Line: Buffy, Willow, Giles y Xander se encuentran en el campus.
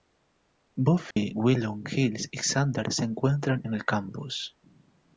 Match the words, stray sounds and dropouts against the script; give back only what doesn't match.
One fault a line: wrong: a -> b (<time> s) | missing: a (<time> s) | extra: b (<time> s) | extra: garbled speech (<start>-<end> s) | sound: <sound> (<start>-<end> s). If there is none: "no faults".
sound: dropout (1.1-1.2 s)